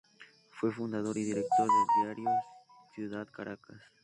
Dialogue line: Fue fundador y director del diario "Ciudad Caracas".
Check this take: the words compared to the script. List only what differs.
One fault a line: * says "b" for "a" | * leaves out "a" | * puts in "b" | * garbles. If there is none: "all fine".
all fine